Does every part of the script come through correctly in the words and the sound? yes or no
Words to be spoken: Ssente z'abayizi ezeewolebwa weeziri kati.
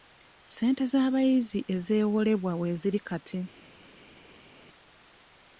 yes